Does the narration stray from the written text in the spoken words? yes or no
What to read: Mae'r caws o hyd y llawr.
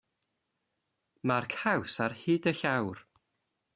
yes